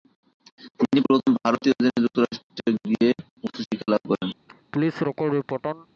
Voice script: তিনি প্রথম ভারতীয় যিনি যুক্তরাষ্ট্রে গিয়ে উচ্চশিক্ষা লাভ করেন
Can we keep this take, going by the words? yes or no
yes